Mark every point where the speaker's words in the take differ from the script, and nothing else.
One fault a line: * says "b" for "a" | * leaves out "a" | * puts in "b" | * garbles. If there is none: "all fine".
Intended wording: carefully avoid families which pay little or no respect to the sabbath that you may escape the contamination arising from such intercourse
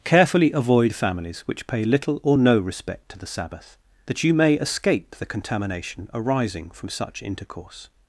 all fine